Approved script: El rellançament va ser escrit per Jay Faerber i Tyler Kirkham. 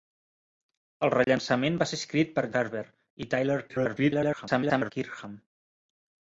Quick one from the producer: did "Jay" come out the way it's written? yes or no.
no